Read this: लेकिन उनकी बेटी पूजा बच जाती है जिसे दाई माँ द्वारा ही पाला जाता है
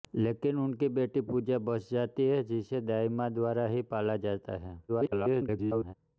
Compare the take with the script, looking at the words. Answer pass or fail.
fail